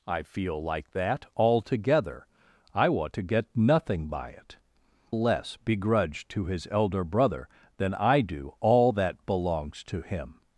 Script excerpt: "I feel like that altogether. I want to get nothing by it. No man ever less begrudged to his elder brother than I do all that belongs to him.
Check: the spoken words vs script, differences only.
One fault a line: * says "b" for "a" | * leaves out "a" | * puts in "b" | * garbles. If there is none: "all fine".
* leaves out "No man ever"